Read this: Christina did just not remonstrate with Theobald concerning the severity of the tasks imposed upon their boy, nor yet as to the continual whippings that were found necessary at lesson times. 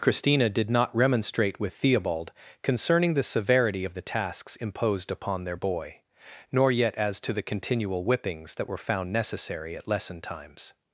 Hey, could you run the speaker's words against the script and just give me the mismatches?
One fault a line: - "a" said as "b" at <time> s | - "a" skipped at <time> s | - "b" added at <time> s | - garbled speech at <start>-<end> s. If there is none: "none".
- "just" skipped at 0.7 s